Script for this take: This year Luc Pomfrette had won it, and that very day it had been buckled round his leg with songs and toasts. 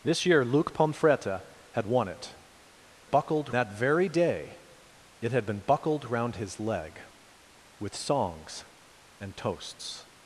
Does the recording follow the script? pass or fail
fail